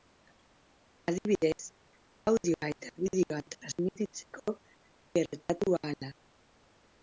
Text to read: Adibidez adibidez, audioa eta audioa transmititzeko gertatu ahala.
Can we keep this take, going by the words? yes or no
no